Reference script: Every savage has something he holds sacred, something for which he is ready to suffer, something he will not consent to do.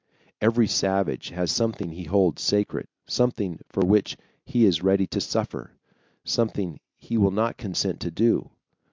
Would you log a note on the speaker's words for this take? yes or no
no